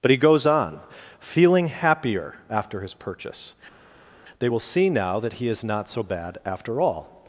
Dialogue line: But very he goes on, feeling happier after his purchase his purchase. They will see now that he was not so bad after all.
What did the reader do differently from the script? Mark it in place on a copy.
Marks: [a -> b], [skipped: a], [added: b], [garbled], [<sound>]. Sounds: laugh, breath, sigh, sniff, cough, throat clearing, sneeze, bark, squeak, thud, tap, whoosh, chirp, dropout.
But [skipped: very] he goes on, feeling happier after his purchase [skipped: his purchase.] They will see now that he [was -> is] not so bad after all.